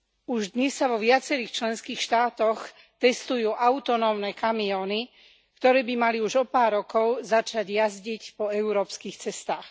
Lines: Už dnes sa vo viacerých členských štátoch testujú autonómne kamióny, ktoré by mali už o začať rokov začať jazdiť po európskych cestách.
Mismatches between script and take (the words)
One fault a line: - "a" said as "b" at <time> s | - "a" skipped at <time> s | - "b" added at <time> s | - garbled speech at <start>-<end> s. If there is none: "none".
- "začať" said as "pár" at 6.5 s